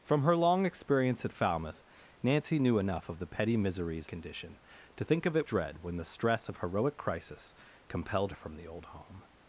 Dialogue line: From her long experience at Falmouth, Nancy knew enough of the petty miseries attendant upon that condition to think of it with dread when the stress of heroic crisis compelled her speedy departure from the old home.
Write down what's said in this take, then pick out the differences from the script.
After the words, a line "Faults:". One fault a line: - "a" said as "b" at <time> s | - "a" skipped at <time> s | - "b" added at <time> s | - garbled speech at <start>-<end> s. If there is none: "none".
From her long experience at Falmouth, Nancy knew enough of the petty miseries condition to think of it dread when the stress of heroic crisis compelled from the old home.
Faults:
- "attendant upon that" skipped at 4.1 s
- "with" skipped at 5.5 s
- "her speedy departure" skipped at 8.3 s